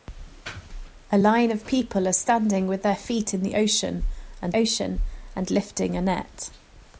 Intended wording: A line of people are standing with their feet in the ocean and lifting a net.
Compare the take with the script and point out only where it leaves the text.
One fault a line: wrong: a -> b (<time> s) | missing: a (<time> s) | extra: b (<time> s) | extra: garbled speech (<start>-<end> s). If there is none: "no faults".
extra: ocean and (4.6 s)